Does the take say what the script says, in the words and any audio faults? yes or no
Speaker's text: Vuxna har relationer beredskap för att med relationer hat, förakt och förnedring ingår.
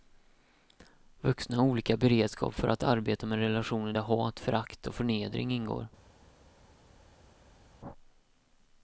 no